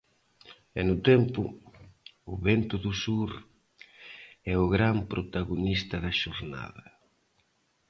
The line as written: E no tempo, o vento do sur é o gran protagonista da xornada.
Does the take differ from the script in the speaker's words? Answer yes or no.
no